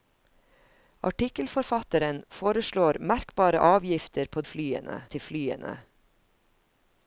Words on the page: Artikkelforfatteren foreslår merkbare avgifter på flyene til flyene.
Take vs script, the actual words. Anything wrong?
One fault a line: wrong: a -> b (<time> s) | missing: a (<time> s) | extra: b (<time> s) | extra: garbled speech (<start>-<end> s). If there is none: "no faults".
no faults